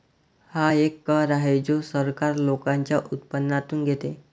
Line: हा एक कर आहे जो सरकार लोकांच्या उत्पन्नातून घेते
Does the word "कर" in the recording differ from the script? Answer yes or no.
no